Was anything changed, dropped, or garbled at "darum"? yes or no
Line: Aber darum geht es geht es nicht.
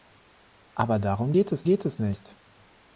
no